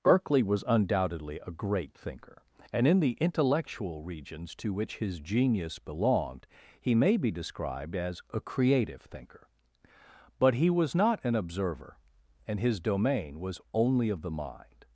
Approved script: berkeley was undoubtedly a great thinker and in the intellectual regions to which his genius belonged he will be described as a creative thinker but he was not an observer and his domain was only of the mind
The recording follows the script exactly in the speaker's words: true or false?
false